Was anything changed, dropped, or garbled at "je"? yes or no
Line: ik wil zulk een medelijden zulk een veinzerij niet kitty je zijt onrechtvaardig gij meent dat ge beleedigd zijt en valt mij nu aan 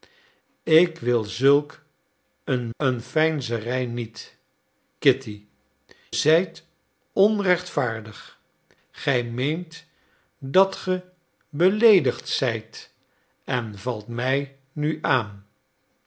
yes